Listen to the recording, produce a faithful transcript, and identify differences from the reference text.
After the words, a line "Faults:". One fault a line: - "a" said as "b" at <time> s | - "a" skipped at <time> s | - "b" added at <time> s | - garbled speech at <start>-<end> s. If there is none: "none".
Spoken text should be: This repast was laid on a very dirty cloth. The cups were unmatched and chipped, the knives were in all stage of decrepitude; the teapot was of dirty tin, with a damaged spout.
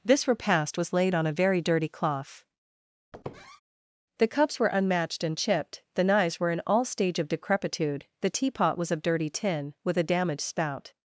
This repast was laid on a very dirty cloth. The cups were unmatched and chipped, the knives were in all stage of decrepitude; the teapot was of dirty tin, with a damaged spout.
Faults:
none